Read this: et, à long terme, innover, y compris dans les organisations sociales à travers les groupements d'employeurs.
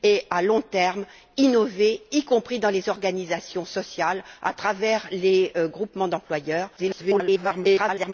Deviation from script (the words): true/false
true